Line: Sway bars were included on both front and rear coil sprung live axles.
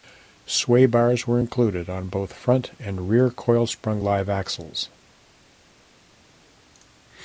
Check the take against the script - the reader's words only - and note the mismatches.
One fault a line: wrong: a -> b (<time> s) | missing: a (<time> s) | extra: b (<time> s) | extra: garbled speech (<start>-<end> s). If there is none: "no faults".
no faults